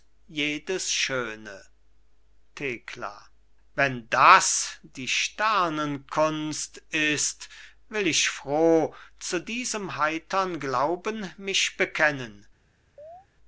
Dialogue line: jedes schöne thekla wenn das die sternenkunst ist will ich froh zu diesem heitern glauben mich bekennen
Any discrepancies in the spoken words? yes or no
no